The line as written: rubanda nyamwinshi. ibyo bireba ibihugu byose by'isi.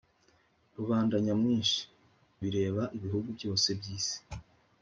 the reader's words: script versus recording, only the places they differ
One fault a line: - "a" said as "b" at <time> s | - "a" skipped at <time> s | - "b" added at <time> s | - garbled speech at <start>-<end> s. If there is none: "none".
- "ibyo" skipped at 1.8 s